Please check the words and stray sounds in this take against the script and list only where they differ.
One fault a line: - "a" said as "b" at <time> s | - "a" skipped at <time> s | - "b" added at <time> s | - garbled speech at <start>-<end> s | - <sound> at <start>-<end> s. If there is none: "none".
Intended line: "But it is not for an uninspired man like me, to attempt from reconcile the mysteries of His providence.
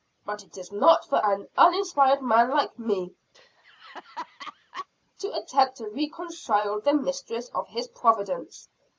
- laugh at 3.3-4.9 s
- "from" said as "to" at 5.8 s